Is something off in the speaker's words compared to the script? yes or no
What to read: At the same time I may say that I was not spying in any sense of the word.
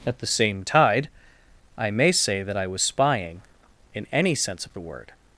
yes